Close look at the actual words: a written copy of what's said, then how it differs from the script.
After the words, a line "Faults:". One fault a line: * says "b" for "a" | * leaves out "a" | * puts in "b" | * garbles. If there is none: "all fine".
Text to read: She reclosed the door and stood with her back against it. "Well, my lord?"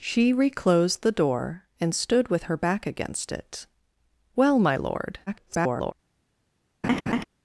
She reclosed the door and stood with her back against it. "Well, my lord?" [garbled]
Faults:
* garbles